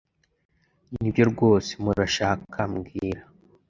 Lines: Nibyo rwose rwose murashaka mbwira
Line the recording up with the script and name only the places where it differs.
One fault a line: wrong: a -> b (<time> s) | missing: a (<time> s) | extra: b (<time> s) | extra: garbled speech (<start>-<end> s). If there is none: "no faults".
missing: rwose (1.7 s)